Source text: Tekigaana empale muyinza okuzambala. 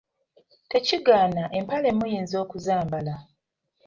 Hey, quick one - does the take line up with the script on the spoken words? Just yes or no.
yes